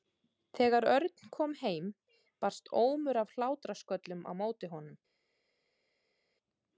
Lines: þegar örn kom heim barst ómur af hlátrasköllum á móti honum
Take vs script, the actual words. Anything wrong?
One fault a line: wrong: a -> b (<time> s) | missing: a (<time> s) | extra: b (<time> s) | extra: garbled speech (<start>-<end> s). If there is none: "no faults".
no faults